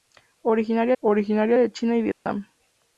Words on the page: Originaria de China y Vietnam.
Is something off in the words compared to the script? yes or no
yes